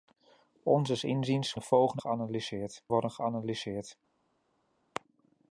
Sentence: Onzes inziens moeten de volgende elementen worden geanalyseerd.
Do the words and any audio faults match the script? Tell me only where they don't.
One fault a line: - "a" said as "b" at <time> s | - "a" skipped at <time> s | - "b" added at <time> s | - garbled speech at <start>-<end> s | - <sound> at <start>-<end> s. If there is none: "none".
- "moeten" skipped at 1.6 s
- "elementen" said as "geanalyseerd" at 2.0 s